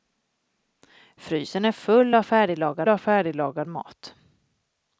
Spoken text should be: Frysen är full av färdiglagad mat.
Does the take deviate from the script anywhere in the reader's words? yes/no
yes